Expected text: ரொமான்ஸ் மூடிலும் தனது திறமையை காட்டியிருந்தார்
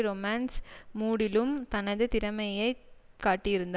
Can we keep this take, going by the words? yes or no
yes